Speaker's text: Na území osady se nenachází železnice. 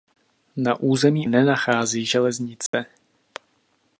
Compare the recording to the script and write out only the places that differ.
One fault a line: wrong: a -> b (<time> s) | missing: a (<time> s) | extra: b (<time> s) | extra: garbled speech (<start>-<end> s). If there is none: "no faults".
missing: osady se (1.3 s)